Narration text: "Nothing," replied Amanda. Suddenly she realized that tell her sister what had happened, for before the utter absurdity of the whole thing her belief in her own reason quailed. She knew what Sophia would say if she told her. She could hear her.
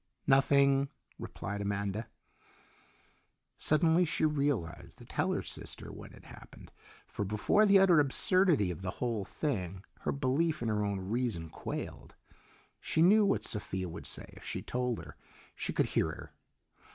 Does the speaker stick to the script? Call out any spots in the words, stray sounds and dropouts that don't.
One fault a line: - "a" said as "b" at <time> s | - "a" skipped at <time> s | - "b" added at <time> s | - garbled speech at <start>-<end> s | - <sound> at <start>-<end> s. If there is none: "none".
none